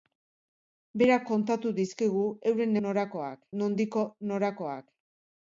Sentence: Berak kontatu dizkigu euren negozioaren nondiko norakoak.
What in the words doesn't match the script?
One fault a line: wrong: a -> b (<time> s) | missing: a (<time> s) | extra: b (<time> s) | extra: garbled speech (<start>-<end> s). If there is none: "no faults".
wrong: negozioaren -> norakoak (2.9 s)